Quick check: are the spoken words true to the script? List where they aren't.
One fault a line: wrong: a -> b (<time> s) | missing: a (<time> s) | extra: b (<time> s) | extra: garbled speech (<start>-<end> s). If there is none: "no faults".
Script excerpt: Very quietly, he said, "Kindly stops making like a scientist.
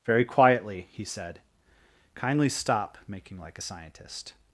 wrong: stops -> stop (2.5 s)